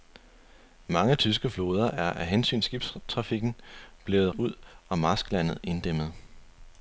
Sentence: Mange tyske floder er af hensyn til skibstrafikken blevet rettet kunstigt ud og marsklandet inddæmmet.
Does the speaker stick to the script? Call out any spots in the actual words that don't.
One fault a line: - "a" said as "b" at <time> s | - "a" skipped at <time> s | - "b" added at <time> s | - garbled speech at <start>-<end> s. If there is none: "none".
- "til" skipped at 2.6 s
- "rettet kunstigt" skipped at 4.3 s